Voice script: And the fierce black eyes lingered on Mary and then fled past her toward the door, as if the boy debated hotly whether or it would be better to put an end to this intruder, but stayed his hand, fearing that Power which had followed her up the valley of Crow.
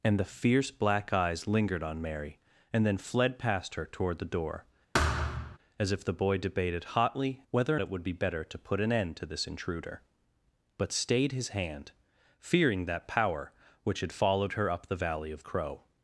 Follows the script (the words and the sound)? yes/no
no